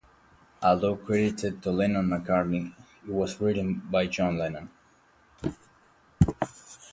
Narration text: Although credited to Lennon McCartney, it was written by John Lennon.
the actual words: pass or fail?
pass